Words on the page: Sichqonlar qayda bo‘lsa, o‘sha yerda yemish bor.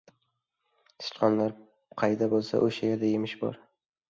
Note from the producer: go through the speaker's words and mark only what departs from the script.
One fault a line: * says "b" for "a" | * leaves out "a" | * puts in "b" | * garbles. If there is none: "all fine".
all fine